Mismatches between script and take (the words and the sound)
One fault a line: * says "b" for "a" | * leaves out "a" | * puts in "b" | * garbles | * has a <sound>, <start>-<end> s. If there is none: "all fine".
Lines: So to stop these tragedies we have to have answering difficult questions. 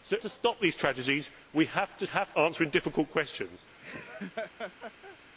* has a laugh, 3.8-5.2 s